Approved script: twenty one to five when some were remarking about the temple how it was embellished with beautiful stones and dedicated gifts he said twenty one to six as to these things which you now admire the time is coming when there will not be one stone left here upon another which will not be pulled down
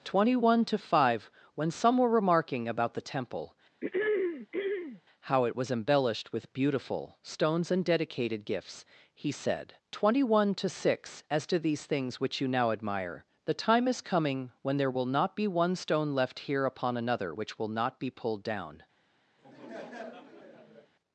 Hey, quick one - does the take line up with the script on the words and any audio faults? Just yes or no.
no